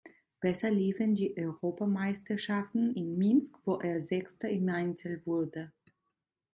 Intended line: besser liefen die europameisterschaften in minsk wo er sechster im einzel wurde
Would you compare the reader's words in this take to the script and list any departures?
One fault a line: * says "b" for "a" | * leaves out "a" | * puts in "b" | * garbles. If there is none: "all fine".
all fine